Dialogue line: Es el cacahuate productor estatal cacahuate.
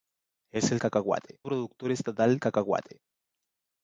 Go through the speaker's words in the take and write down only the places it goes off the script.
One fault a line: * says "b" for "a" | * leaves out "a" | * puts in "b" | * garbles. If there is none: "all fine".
all fine